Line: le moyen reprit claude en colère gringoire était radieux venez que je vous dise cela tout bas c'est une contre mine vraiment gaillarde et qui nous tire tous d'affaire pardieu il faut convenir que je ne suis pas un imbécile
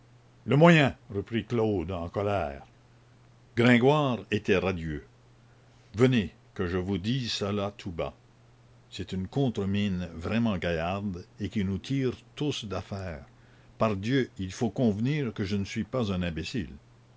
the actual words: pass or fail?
pass